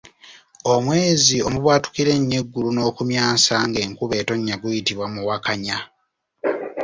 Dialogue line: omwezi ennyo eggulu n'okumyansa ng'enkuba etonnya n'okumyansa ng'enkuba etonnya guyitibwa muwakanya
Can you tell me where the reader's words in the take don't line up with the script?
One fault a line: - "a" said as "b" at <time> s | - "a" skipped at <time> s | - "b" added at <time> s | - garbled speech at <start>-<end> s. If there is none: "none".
- "omubwatukira" added at 1.5 s
- "n'okumyansa ng'enkuba etonnya" skipped at 4.6 s